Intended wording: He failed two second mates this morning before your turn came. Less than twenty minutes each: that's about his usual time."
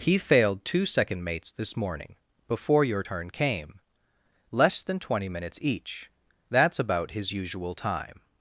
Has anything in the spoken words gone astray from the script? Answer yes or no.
no